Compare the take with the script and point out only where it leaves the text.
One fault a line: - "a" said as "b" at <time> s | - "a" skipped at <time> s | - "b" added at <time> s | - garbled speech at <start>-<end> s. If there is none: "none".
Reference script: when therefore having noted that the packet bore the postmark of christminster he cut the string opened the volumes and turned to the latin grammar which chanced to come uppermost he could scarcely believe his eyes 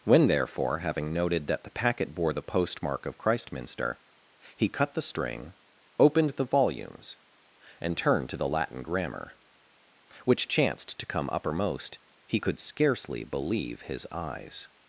none